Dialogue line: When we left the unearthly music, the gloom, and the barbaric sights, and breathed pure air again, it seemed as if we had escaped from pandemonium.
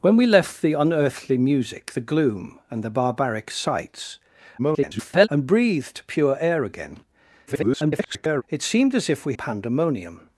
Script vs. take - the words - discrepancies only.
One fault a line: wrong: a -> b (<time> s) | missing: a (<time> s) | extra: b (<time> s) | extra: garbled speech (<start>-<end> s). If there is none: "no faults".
extra: garbled speech (4.6-5.3 s)
extra: garbled speech (7.5-8.4 s)
missing: had escaped from (9.3 s)